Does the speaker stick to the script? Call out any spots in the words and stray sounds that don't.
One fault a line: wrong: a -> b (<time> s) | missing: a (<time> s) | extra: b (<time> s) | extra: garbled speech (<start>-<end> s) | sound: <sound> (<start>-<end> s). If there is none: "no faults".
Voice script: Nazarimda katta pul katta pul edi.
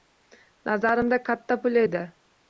missing: katta pul (1.8 s)